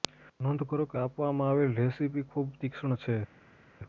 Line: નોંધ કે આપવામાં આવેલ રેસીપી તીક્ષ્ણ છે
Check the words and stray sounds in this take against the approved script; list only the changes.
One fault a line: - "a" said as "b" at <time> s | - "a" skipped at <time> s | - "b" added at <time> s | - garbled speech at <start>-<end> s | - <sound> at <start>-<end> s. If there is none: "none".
- "કરો" added at 0.7 s
- "ખૂબ" added at 2.3 s